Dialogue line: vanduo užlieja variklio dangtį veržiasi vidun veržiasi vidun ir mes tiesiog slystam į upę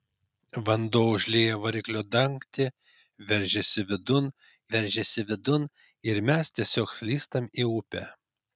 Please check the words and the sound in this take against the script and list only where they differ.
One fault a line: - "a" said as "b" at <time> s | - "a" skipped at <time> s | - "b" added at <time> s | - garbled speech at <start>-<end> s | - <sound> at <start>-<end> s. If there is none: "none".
none